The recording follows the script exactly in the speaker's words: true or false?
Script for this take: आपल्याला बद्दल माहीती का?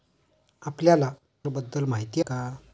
true